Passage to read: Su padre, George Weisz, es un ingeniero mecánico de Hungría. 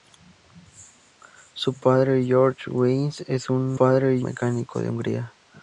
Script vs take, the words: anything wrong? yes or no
yes